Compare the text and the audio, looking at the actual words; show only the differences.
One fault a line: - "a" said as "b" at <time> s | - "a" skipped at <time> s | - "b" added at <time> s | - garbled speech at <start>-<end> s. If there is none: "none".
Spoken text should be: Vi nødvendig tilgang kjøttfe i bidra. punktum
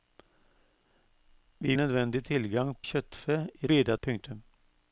none